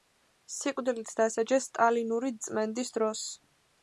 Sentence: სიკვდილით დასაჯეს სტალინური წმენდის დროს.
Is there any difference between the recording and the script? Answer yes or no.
no